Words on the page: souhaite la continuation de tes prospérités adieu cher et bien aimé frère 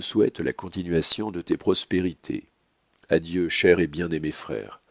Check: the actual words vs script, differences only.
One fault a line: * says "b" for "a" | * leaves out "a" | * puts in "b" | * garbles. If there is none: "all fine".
all fine